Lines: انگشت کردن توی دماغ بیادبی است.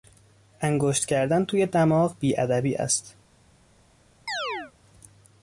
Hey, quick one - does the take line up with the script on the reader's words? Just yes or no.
yes